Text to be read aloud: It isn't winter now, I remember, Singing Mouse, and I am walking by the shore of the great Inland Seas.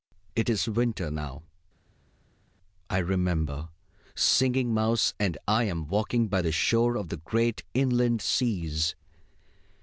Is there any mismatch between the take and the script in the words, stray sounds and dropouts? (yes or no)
yes